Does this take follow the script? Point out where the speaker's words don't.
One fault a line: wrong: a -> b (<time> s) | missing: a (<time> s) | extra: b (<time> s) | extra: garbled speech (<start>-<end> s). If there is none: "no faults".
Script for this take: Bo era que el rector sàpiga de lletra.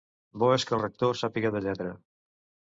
wrong: era -> és (0.5 s)